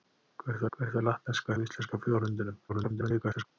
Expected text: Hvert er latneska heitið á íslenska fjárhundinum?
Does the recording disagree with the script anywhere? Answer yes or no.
yes